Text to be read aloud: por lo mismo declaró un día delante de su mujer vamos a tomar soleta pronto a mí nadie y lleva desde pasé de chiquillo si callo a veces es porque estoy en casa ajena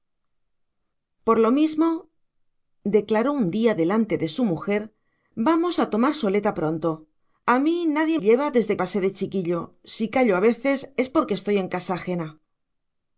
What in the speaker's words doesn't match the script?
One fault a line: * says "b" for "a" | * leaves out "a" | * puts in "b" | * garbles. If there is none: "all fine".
all fine